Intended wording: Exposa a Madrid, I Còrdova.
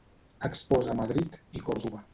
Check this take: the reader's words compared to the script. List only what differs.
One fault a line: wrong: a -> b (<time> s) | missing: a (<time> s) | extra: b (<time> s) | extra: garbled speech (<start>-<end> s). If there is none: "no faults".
no faults